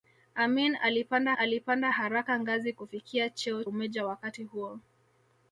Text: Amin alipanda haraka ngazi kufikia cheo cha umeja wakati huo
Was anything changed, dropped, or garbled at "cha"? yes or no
yes